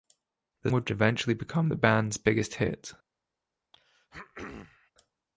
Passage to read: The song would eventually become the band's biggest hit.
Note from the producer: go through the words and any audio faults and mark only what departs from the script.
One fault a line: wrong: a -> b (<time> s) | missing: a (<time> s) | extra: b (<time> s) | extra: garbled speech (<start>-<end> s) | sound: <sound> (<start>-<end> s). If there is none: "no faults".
missing: song (0.7 s)
sound: throat clearing (3.7-4.9 s)